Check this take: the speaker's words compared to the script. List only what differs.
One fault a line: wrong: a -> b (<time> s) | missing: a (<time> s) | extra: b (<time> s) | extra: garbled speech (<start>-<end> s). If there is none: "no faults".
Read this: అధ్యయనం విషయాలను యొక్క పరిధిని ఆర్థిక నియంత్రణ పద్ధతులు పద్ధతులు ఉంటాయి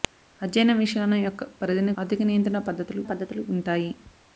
no faults